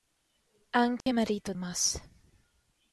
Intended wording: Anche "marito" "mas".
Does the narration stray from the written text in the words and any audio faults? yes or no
yes